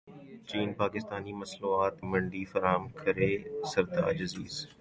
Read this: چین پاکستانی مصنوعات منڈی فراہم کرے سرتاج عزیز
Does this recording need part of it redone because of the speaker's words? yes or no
no